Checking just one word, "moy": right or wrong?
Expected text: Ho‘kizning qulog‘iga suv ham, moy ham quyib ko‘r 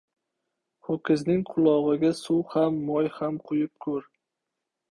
right